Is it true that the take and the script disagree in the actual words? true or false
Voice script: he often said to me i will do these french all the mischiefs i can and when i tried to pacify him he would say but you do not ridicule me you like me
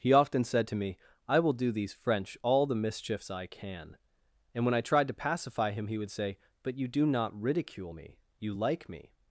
false